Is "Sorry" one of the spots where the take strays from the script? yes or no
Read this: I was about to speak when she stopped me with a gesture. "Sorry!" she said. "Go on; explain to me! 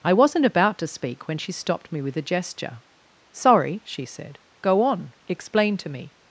no